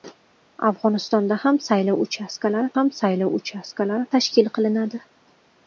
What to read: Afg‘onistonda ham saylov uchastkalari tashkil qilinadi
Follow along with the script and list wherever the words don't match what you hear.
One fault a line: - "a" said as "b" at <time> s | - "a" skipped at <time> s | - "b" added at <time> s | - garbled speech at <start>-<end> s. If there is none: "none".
- "ham saylov uchastkalari" added at 2.7 s